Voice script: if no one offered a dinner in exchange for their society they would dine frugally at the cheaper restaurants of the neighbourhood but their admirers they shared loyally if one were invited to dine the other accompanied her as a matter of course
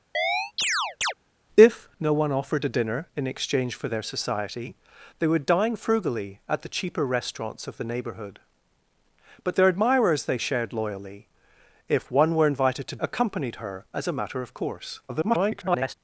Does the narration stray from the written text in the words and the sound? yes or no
yes